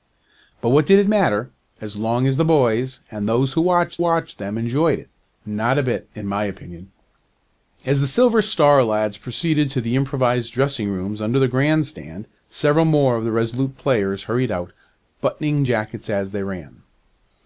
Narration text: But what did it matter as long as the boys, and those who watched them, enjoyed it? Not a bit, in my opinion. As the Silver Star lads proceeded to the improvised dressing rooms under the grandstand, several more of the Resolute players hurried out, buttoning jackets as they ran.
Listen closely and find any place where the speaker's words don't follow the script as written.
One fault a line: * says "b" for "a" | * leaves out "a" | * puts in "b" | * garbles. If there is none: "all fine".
* puts in "watched"